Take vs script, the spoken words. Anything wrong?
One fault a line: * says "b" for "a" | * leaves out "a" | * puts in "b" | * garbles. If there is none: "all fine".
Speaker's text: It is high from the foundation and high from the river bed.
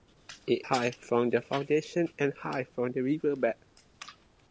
* leaves out "is"